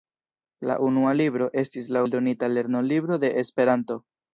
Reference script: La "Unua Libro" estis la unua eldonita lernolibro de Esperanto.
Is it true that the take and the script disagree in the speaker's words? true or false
true